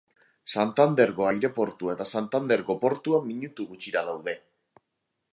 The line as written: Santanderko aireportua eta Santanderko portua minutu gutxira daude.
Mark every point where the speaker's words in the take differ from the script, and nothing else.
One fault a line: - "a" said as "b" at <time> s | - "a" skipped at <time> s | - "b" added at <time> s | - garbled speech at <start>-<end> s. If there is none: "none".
none